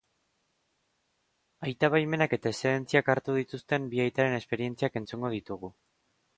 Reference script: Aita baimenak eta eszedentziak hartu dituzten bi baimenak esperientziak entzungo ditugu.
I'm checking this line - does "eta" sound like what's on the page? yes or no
yes